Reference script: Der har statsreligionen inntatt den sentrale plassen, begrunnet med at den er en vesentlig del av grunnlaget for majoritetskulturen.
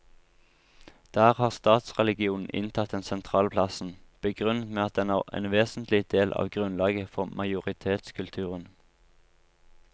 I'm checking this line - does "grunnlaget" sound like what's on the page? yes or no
yes